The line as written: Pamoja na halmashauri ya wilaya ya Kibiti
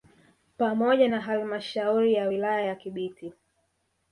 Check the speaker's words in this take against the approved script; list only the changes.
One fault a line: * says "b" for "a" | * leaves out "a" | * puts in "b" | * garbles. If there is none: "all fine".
all fine